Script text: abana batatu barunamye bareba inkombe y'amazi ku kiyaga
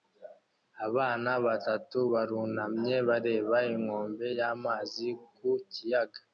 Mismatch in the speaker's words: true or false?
false